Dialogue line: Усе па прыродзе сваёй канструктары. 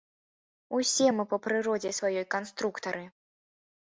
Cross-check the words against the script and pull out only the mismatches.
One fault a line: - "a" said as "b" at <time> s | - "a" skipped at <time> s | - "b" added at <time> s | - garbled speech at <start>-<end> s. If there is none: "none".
- "мы" added at 1.2 s